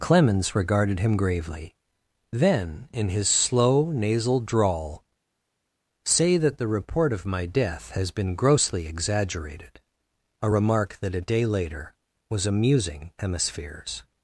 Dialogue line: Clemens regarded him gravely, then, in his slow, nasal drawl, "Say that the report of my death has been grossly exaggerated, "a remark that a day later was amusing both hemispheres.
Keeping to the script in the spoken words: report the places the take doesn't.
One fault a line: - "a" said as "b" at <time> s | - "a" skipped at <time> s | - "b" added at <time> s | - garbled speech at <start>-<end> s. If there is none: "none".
- "both" skipped at 13.1 s